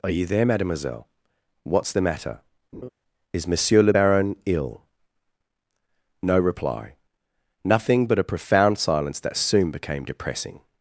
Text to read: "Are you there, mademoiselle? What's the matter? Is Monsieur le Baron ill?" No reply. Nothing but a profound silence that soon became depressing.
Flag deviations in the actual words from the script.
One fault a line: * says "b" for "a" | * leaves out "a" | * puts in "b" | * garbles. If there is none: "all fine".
all fine